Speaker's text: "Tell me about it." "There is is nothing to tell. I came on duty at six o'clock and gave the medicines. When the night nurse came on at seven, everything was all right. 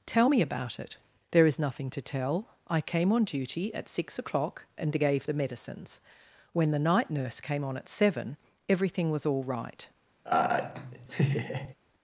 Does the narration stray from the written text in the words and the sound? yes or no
yes